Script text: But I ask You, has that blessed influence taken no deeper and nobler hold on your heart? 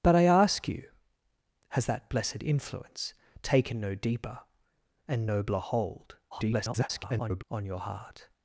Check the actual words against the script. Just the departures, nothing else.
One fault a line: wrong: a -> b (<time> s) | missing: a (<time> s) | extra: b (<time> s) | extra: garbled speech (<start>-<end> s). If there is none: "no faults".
extra: garbled speech (6.3-7.4 s)